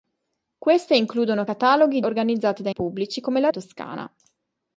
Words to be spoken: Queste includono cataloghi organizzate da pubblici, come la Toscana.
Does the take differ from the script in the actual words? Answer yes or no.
no